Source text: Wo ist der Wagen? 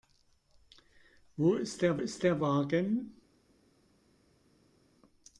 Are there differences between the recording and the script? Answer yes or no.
yes